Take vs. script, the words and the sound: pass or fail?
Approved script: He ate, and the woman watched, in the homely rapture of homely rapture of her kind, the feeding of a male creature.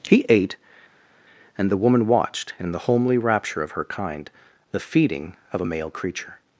fail